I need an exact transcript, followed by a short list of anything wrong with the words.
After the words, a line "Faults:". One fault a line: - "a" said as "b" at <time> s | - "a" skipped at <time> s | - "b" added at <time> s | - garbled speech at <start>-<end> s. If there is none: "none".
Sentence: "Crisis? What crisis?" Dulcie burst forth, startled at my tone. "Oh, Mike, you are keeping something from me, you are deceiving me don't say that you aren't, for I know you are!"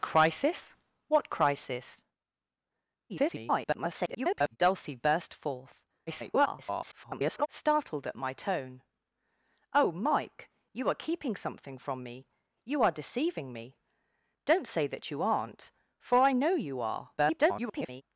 "Crisis? What crisis?" [garbled] Dulcie burst forth, [garbled] startled at my tone. "Oh, Mike, you are keeping something from me, you are deceiving me don't say that you aren't, for I know you are!" [garbled]
Faults:
- garbled speech at 3.1-4.6 s
- garbled speech at 6.1-7.5 s
- garbled speech at 17.2-18.0 s